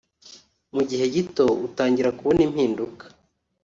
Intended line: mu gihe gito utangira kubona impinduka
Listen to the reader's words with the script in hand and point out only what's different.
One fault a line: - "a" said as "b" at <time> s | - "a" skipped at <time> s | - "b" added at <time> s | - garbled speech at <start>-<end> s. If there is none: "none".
none